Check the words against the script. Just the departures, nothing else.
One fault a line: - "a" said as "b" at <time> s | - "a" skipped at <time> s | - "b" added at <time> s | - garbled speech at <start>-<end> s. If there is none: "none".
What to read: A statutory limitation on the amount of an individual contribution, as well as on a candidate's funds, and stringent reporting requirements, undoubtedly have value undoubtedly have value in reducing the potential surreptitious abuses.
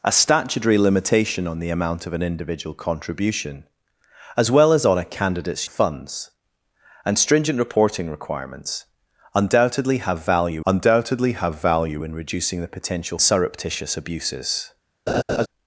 none